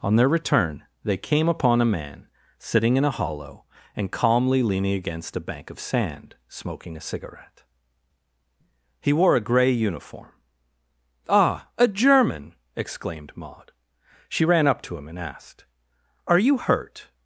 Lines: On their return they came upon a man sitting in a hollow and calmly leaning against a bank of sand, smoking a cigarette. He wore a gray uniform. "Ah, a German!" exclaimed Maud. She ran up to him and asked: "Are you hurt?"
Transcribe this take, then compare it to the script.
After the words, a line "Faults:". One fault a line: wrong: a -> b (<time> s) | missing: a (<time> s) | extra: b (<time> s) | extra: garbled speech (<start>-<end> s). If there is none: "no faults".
On their return they came upon a man sitting in a hollow and calmly leaning against a bank of sand, smoking a cigarette. He wore a gray uniform. "Ah, a German!" exclaimed Maud. She ran up to him and asked: "Are you hurt?"
Faults:
no faults